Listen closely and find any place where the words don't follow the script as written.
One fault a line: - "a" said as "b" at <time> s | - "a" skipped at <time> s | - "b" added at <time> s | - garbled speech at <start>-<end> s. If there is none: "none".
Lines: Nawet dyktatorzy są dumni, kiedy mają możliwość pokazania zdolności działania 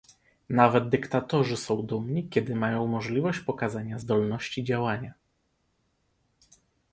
none